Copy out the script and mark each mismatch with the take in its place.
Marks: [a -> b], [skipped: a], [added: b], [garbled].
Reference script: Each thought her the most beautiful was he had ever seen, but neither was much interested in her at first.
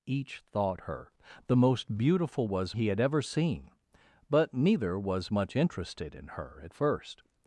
Each thought her the most beautiful was he had ever seen, but neither was much interested in her at first.